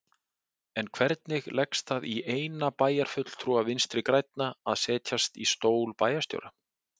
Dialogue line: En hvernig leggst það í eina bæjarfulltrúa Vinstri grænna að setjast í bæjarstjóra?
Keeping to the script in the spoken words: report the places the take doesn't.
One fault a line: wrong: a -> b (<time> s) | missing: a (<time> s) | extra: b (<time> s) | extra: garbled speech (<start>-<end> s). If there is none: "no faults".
extra: stól (5.5 s)